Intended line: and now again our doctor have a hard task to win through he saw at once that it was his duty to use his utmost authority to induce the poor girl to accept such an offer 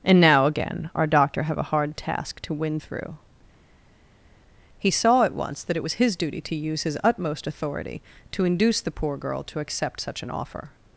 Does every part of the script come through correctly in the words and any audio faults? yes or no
yes